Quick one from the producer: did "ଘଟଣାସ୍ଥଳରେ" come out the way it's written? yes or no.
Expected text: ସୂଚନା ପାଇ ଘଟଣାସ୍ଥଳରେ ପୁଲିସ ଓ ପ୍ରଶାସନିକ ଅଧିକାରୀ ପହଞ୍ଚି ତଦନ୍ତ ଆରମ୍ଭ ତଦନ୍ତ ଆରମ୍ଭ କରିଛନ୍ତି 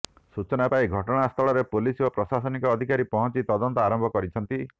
yes